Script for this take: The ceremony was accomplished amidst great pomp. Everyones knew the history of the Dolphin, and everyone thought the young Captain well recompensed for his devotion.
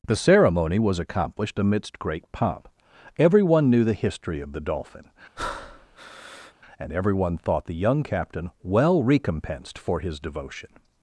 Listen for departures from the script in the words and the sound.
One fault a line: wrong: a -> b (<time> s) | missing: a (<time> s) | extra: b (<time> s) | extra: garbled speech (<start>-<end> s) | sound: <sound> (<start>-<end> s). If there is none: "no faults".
wrong: Everyones -> Everyone (3.2 s)
sound: breath (5.4-6.5 s)